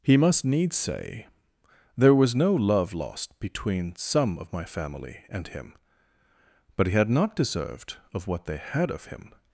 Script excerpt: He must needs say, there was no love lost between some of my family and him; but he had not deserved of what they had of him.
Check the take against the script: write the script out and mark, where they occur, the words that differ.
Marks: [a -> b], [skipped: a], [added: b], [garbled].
He must needs say, there was no love lost between some of my family and him; but he had not deserved of what they had of him.